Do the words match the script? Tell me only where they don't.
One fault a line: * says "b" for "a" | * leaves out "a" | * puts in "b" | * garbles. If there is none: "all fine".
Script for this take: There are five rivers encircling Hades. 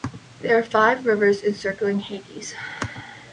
all fine